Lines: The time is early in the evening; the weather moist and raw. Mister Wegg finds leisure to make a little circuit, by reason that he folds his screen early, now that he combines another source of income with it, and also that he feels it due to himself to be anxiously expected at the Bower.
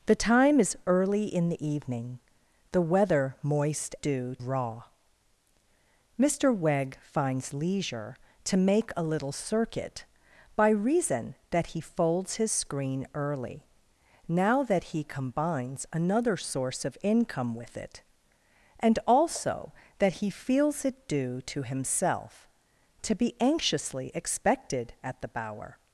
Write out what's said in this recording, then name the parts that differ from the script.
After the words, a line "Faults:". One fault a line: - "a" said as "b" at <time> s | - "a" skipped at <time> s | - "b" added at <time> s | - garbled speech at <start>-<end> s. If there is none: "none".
The time is early in the evening; the weather moist due raw. Mister Wegg finds leisure to make a little circuit, by reason that he folds his screen early, now that he combines another source of income with it, and also that he feels it due to himself to be anxiously expected at the Bower.
Faults:
- "and" said as "due" at 4.0 s